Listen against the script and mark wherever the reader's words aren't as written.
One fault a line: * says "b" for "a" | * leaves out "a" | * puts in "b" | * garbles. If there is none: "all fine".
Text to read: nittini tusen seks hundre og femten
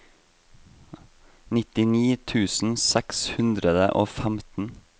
all fine